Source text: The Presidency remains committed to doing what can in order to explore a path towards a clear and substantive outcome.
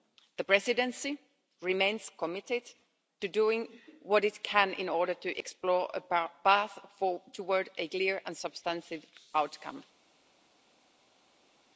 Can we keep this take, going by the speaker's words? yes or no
no